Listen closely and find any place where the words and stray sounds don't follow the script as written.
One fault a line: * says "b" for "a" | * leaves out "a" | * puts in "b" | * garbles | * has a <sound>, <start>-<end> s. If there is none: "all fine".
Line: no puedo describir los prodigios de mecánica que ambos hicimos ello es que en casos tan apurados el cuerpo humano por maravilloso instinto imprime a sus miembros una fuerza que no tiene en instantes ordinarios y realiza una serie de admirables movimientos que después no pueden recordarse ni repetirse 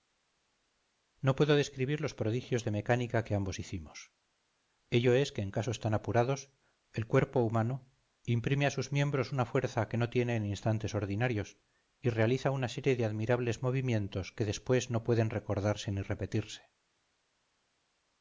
* leaves out "por maravilloso instinto"